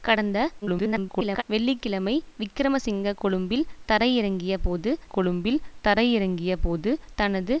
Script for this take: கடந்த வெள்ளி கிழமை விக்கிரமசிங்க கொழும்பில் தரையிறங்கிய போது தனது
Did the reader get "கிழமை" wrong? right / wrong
right